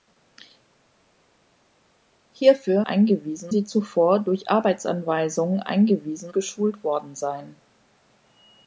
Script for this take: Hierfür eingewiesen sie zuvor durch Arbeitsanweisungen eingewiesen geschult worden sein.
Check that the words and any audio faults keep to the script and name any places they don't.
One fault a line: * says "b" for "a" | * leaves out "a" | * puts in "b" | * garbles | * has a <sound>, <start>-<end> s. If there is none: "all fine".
all fine